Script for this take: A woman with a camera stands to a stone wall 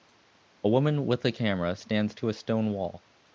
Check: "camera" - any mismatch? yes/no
no